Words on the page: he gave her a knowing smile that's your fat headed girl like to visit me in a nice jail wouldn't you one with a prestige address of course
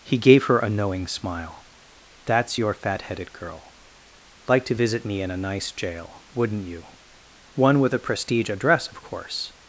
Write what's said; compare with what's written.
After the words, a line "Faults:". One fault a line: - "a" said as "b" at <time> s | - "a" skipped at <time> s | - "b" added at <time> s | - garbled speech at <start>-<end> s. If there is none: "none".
he gave her a knowing smile that's your fat headed girl like to visit me in a nice jail wouldn't you one with a prestige address of course
Faults:
none